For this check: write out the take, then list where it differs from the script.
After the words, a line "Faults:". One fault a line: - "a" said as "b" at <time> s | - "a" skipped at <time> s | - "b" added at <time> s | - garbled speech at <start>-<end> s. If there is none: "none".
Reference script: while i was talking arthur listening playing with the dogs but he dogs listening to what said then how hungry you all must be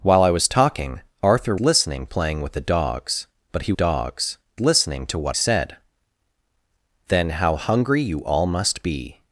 while i was talking arthur listening playing with the dogs but he dogs listening to what said then how hungry you all must be
Faults:
none